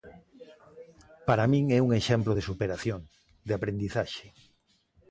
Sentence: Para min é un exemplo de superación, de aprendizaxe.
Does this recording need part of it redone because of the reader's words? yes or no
no